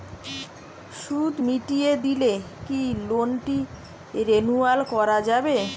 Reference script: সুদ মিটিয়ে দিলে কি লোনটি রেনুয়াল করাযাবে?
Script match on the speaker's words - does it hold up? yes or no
yes